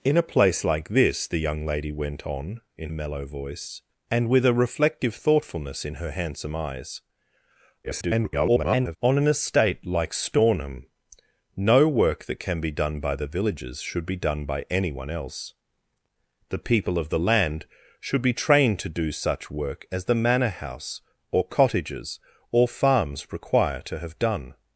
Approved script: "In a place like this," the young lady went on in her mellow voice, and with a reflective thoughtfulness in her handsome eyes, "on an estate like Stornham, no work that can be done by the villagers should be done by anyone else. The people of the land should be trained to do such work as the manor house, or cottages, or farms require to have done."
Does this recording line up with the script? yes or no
no